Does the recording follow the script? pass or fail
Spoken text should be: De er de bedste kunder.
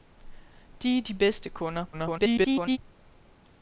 fail